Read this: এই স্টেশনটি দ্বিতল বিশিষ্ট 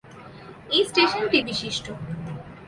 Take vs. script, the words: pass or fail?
fail